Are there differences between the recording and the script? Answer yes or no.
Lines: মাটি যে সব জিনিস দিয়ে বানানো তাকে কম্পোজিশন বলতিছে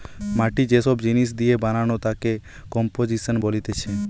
no